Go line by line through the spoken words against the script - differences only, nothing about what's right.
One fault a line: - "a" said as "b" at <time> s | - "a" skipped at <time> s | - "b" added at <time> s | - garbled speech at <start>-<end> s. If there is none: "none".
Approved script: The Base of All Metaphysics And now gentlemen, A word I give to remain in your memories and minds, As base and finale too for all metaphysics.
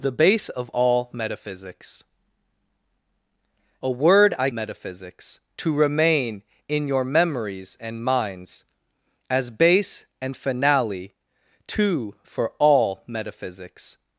- "And now gentlemen" skipped at 2.0 s
- "give" said as "metaphysics" at 4.5 s